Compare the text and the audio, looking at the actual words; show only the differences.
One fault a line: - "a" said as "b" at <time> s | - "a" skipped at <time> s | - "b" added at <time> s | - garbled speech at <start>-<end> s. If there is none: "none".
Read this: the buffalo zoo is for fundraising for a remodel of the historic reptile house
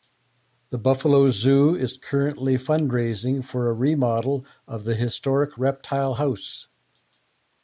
- "for" said as "currently" at 2.0 s